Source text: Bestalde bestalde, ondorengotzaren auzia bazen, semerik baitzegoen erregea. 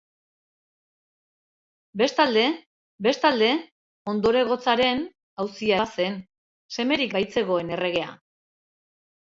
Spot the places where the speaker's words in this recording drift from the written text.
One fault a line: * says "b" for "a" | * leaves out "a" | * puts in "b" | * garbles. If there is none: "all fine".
all fine